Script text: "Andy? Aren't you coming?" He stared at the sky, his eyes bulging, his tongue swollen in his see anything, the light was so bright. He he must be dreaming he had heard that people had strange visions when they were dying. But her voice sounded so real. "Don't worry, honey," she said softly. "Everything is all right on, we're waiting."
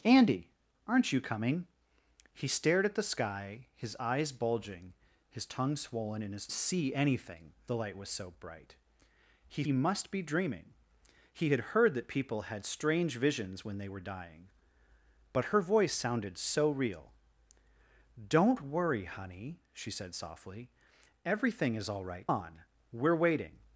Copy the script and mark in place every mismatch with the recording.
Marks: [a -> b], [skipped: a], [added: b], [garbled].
"Andy? Aren't you coming?" He stared at the sky, his eyes bulging, his tongue swollen in his see anything, the light was so bright. He he must be dreaming he had heard that people had strange visions when they were dying. But her voice sounded so real. "Don't worry, honey," she said softly. "Everything is all right on, we're waiting."